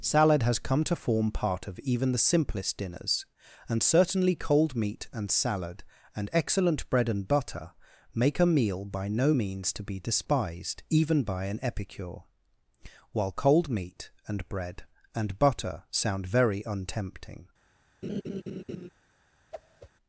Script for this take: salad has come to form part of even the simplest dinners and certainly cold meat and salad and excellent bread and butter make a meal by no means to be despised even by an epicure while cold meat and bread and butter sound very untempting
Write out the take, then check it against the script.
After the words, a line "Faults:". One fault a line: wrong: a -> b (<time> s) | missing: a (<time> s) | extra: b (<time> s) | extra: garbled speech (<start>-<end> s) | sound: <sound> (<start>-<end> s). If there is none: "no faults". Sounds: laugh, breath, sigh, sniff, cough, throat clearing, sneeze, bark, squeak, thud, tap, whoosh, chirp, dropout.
salad has come to form part of even the simplest dinners and certainly cold meat and salad and excellent bread and butter make a meal by no means to be despised even by an epicure while cold meat and bread and butter sound very untempting
Faults:
sound: laugh (18.0-18.9 s)
sound: whoosh (19.5-19.9 s)